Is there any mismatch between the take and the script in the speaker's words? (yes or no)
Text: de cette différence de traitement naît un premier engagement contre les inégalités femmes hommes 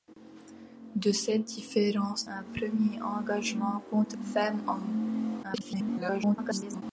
yes